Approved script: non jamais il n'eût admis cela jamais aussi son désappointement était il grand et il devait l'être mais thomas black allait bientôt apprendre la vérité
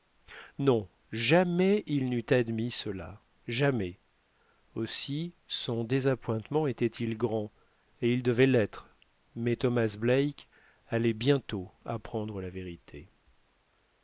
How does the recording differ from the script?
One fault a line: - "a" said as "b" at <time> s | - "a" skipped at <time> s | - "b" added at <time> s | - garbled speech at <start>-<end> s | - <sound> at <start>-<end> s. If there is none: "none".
none